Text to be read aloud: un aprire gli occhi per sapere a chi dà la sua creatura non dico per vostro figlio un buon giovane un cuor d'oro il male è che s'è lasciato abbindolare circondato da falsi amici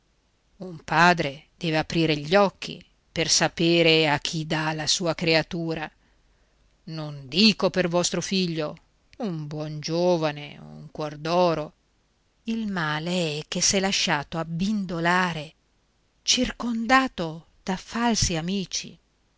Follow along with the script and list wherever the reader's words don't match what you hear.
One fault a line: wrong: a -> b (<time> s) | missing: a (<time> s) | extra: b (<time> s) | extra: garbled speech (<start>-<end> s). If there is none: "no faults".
extra: padre deve (0.8 s)